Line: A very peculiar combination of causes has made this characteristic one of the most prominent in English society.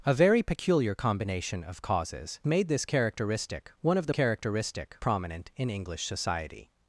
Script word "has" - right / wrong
wrong